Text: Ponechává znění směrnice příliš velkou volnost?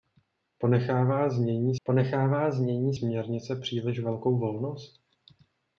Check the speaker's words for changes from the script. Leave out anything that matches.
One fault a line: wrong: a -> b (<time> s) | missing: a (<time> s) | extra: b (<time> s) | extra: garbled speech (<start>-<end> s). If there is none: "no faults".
extra: ponechává znění (1.8 s)